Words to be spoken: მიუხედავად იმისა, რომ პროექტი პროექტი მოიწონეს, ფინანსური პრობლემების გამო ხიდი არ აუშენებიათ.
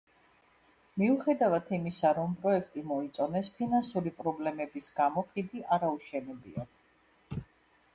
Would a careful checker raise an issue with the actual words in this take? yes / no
yes